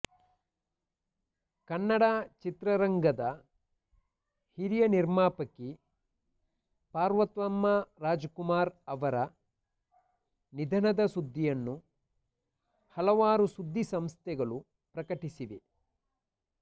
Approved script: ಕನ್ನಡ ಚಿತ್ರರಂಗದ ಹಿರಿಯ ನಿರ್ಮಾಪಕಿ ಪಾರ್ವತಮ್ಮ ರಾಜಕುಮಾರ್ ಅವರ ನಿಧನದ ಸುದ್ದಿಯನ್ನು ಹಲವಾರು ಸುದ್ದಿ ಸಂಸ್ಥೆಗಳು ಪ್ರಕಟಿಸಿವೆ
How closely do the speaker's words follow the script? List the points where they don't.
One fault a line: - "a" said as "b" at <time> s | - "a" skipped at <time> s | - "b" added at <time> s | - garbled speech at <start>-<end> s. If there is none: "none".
none